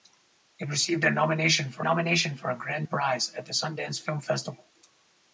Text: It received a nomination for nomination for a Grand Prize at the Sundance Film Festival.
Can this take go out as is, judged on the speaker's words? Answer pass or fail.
pass